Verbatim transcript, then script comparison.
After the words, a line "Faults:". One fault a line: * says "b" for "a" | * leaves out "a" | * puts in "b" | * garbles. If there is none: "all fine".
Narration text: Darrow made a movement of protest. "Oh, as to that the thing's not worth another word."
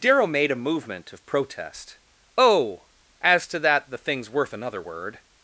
Darrow made a movement of protest. "Oh, as to that the thing's worth another word."
Faults:
* leaves out "not"